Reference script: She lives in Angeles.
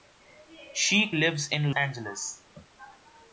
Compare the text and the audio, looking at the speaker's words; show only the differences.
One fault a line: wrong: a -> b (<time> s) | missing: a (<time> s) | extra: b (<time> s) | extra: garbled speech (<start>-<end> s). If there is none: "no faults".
no faults